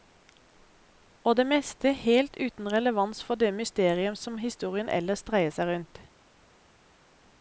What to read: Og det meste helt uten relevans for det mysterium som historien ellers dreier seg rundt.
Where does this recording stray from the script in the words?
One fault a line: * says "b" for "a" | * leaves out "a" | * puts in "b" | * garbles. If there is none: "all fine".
all fine